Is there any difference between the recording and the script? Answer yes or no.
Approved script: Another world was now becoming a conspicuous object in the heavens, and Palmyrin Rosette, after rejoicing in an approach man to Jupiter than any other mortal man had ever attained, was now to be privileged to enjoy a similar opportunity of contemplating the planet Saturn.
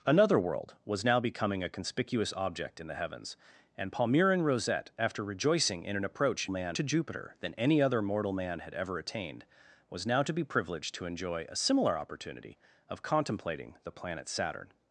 no